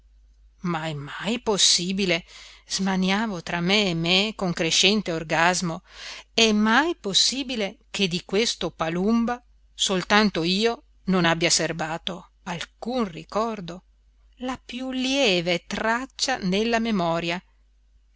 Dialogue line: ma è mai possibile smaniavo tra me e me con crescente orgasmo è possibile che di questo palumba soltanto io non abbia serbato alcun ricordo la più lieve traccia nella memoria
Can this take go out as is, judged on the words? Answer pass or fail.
fail